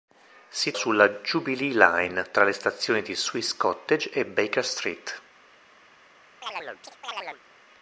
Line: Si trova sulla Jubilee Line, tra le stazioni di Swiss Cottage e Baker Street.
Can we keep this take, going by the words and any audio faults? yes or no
no